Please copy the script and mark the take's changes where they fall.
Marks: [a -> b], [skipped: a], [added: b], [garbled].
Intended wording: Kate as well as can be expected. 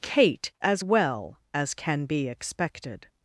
Kate as well as can be expected.